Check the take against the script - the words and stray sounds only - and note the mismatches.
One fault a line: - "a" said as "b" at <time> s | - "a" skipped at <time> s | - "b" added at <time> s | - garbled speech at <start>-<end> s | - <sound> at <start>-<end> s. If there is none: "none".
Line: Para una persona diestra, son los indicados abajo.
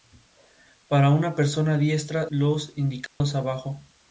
- "son" skipped at 2.3 s
- dropout at 3.1-3.2 s